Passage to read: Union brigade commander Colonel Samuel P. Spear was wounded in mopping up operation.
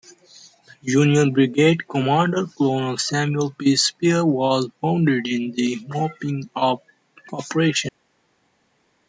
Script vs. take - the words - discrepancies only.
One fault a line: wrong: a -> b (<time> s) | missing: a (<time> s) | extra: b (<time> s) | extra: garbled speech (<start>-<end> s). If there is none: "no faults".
extra: the (5.5 s)